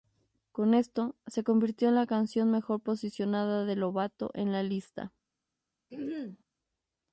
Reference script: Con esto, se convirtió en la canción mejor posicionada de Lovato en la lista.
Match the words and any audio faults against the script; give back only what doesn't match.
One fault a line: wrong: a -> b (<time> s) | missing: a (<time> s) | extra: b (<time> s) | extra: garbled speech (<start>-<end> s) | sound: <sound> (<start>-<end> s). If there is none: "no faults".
sound: throat clearing (5.9-6.4 s)